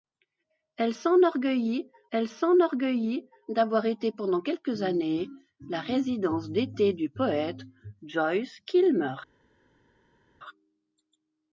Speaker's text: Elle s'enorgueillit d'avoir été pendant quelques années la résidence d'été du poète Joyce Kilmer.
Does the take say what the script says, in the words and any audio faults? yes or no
no